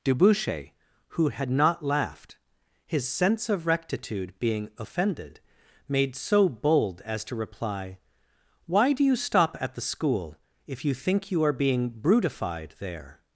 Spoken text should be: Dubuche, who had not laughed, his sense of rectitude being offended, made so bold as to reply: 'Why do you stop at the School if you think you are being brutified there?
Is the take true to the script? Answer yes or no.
yes